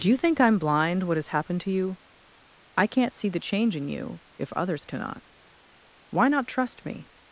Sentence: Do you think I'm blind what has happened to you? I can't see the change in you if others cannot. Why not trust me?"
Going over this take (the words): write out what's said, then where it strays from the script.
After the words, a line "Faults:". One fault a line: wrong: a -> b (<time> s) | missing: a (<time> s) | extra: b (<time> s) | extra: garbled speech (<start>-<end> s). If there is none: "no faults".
Do you think I'm blind what has happened to you? I can't see the change in you if others cannot. Why not trust me?"
Faults:
no faults